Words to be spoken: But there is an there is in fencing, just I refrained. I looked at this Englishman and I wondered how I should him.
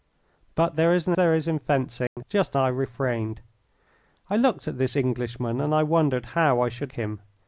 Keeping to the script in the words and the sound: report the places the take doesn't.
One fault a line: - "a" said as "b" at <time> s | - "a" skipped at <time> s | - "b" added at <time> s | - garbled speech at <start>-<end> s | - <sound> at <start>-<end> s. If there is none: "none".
- dropout at 2.1-2.2 s